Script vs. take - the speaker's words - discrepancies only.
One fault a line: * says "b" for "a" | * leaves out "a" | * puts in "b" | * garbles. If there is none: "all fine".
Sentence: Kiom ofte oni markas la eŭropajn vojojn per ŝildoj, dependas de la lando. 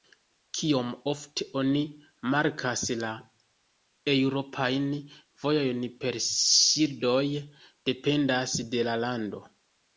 all fine